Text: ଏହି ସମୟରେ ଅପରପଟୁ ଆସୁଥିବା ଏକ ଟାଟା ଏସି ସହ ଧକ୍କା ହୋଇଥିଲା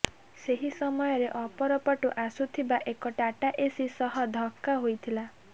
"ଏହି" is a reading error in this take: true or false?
true